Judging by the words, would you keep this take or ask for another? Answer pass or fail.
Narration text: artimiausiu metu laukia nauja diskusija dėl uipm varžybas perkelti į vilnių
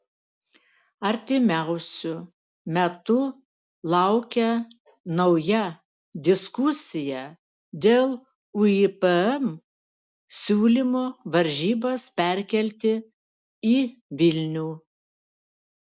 fail